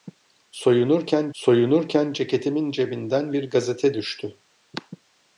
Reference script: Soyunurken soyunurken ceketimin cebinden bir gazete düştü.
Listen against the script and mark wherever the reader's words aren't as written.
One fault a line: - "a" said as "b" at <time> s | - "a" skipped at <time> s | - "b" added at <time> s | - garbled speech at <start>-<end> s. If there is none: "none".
none